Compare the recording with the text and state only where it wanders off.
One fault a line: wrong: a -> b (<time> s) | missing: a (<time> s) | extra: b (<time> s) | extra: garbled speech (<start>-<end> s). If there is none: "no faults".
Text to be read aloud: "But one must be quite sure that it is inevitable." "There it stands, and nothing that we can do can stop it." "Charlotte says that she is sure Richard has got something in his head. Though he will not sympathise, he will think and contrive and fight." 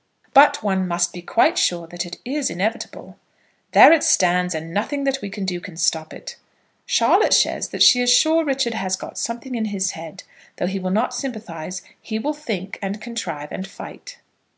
no faults